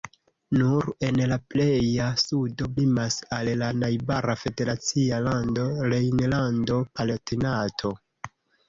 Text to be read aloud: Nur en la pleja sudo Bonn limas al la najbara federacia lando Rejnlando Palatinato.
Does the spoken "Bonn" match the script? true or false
false